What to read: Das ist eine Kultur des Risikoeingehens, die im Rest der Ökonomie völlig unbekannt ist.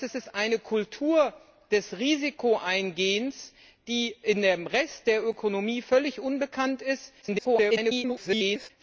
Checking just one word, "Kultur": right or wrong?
right